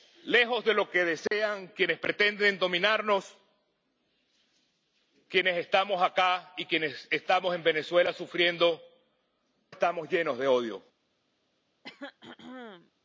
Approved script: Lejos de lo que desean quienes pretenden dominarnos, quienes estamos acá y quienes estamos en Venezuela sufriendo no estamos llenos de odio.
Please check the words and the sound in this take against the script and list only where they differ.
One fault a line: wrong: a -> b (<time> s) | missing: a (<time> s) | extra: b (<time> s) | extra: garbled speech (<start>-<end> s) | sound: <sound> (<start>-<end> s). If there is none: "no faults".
sound: dropout (1.3-1.3 s)
missing: no (8.8 s)
sound: throat clearing (11.8-12.9 s)